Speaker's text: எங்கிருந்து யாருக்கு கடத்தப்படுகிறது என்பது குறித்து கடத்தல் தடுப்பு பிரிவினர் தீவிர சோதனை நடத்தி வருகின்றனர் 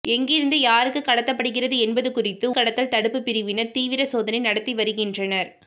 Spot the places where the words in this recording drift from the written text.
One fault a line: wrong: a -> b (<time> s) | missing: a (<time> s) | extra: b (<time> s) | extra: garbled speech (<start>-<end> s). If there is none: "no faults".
no faults